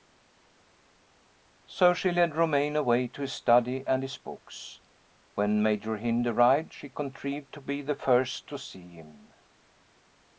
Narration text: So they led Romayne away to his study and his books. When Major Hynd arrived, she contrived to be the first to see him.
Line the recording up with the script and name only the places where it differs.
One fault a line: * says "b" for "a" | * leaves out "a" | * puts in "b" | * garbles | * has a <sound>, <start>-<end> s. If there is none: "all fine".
* says "she" for "they"